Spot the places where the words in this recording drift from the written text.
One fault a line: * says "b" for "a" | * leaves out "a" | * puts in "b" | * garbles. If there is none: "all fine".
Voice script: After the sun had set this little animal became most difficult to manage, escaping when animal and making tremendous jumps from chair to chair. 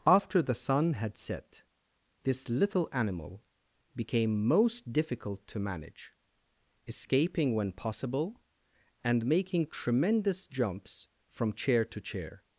* says "possible" for "animal"